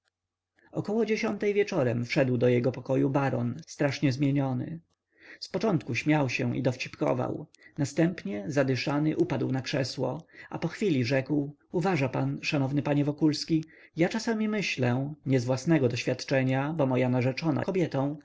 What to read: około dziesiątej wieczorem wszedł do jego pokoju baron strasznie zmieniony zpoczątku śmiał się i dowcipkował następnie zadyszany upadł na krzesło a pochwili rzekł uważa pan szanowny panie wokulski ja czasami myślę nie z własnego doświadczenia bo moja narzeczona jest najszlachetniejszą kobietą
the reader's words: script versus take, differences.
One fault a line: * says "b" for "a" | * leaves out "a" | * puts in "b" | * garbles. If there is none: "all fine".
* leaves out "jest najszlachetniejszą"